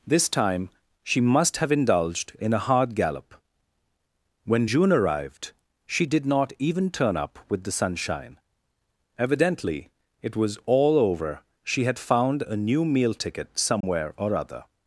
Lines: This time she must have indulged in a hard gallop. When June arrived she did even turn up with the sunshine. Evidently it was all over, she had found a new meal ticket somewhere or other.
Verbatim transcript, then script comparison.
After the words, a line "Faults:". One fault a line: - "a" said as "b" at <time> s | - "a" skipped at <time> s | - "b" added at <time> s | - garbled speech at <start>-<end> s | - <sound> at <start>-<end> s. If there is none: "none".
This time she must have indulged in a hard gallop. When June arrived she did not even turn up with the sunshine. Evidently it was all over, she had found a new meal ticket somewhere or other.
Faults:
- "not" added at 6.3 s
- dropout at 13.8-13.8 s